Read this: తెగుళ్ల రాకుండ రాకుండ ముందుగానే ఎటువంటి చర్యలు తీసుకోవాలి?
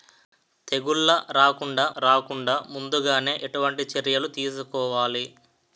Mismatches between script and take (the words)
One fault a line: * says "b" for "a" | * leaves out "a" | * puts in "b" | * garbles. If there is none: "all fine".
all fine